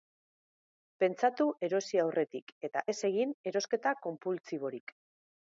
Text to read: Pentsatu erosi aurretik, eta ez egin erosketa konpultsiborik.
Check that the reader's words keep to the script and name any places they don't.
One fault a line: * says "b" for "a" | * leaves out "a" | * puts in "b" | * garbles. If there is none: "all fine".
all fine